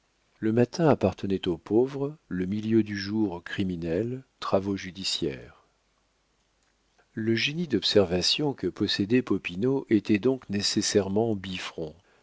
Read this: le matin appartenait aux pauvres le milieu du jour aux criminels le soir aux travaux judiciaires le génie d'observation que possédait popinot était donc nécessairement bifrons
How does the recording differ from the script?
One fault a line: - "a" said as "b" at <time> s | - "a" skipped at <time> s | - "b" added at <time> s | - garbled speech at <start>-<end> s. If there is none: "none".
- "le soir aux" skipped at 4.2 s